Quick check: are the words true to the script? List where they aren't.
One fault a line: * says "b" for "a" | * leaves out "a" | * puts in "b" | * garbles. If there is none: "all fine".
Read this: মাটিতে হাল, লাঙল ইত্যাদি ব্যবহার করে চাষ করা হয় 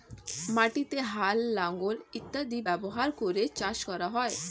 all fine